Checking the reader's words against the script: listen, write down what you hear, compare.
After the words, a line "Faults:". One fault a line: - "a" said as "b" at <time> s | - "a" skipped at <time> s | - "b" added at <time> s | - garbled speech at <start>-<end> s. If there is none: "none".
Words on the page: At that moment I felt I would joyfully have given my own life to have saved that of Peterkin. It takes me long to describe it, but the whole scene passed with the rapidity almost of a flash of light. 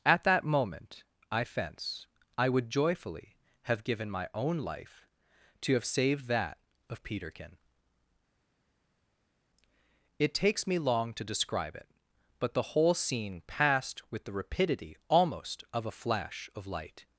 At that moment I fence I would joyfully have given my own life to have saved that of Peterkin. It takes me long to describe it, but the whole scene passed with the rapidity almost of a flash of light.
Faults:
- "felt" said as "fence" at 1.4 s